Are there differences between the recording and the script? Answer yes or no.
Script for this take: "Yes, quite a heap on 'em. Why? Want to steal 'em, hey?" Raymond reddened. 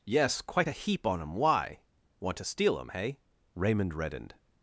no